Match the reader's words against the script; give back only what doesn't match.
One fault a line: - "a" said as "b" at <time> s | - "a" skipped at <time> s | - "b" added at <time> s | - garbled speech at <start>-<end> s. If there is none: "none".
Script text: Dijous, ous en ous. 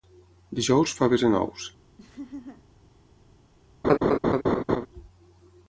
- "ous" said as "faves" at 1.0 s